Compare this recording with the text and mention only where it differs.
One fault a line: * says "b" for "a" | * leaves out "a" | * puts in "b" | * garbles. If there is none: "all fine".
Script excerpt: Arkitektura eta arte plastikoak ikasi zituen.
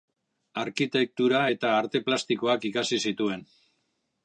all fine